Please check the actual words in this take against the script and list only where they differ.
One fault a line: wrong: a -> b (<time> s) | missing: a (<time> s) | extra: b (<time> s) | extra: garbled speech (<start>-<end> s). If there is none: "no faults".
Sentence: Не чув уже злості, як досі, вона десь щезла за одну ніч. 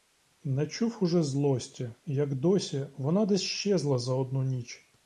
no faults